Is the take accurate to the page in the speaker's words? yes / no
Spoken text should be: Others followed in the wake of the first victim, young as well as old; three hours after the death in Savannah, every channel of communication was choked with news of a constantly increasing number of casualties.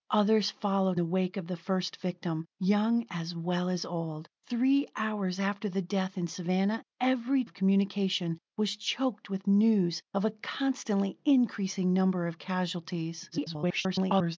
no